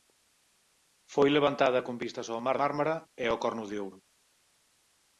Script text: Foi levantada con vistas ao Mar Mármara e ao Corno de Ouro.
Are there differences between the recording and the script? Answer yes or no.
no